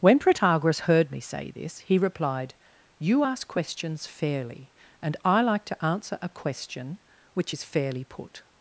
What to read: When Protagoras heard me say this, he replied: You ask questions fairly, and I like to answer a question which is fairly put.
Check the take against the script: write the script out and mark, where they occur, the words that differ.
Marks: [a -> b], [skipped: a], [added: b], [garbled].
When Protagoras heard me say this, he replied: You ask questions fairly, and I like to answer a question which is fairly put.